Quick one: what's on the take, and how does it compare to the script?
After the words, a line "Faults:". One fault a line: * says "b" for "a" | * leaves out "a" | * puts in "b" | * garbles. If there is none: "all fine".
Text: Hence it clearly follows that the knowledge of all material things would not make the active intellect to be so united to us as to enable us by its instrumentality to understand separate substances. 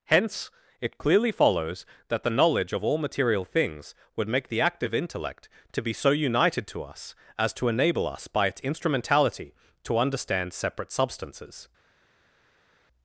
Hence it clearly follows that the knowledge of all material things would make the active intellect to be so united to us as to enable us by its instrumentality to understand separate substances.
Faults:
* leaves out "not"